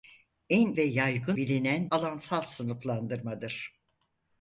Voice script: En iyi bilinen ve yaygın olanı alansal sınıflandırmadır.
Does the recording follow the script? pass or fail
fail